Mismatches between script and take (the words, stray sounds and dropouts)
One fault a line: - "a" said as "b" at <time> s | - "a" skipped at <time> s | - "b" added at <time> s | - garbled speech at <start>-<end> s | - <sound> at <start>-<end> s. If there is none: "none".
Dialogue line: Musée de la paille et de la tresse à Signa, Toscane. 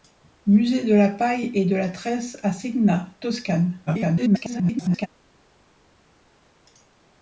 - garbled speech at 3.9-5.1 s